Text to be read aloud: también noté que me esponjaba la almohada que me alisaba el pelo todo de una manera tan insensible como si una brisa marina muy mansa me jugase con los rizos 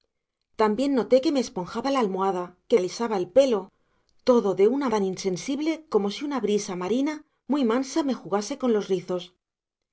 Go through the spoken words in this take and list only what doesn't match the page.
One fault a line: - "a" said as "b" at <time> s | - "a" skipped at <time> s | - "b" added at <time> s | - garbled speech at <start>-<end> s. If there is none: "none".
- "me" skipped at 2.8 s
- "manera" skipped at 4.9 s